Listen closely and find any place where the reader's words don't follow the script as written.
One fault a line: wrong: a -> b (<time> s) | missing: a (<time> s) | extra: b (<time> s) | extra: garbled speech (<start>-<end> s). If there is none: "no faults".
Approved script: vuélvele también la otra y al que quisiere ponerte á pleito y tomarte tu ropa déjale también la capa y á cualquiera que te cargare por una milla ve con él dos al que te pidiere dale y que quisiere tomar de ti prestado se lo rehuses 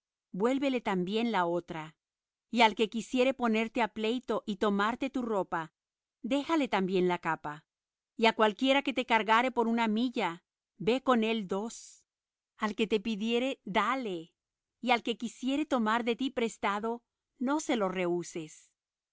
extra: al (14.9 s)
extra: no (17.4 s)